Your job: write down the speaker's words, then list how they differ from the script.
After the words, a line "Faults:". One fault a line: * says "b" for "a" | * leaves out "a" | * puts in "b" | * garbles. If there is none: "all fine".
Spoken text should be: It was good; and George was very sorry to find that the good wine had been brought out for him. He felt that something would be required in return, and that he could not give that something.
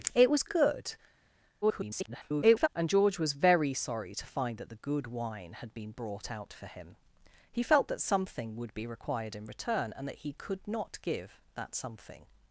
It was good; [garbled] and George was very sorry to find that the good wine had been brought out for him. He felt that something would be required in return, and that he could not give that something.
Faults:
* garbles